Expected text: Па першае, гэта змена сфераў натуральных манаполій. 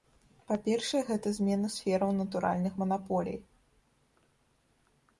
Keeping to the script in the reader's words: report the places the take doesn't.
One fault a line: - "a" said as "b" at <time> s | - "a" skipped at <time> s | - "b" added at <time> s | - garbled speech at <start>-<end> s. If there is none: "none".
none